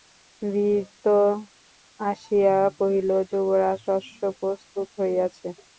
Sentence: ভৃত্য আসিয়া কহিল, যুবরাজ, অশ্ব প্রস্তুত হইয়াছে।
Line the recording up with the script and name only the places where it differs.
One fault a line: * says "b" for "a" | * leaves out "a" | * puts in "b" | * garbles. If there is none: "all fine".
all fine